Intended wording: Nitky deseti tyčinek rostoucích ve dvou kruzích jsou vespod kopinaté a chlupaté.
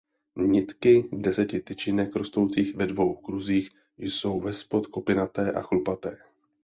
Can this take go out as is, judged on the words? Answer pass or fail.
pass